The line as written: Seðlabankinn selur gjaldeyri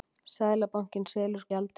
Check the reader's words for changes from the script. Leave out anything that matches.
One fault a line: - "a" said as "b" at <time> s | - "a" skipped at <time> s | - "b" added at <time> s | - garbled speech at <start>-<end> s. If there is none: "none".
none